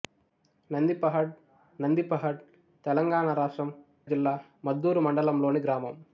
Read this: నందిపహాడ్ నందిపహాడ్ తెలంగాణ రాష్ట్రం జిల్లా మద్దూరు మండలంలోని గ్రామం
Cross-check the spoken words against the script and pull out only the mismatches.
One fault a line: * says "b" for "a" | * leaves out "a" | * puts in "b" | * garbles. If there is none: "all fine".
all fine